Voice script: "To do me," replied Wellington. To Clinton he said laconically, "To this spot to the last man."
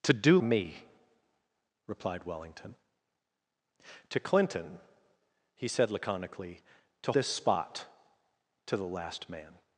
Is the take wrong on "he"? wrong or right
right